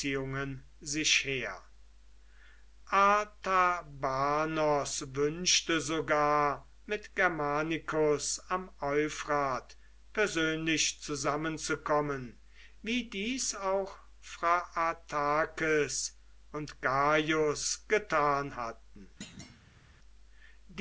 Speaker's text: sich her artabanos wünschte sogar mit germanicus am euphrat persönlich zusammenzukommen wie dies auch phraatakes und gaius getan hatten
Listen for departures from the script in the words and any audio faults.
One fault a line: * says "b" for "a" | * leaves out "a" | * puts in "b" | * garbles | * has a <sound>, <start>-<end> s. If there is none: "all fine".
* has a thud, 19.2-19.9 s